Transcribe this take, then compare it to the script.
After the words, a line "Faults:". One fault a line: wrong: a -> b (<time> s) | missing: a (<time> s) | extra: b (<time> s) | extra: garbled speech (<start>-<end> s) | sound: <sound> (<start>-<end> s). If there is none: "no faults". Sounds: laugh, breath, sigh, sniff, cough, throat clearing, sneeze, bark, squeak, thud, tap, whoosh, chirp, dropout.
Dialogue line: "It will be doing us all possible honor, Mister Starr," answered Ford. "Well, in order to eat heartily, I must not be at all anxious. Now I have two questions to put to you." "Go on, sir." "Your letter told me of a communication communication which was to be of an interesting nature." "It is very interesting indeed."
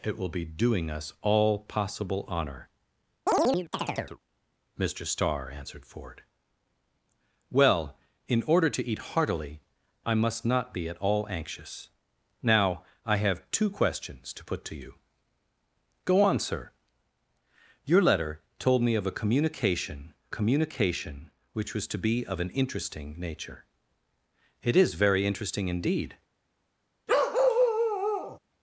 "It will be doing us all possible honor, Mister Starr," answered Ford. "Well, in order to eat heartily, I must not be at all anxious. Now I have two questions to put to you." "Go on, sir." "Your letter told me of a communication communication which was to be of an interesting nature." "It is very interesting indeed."
Faults:
sound: chirp (3.3-4.2 s)
sound: bark (27.1-28.4 s)